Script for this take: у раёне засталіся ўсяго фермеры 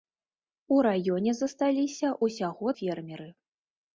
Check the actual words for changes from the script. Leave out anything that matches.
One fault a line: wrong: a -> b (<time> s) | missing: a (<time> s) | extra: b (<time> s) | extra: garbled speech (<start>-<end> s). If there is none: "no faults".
no faults